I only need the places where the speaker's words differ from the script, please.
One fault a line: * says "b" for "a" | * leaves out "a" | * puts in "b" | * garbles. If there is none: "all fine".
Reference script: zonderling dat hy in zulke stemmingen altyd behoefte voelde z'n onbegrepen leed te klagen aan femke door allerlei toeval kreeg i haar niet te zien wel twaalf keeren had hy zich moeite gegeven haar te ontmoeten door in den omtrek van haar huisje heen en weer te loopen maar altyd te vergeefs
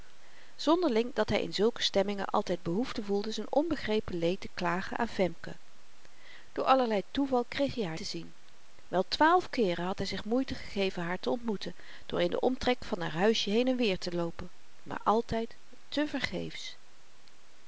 * leaves out "niet"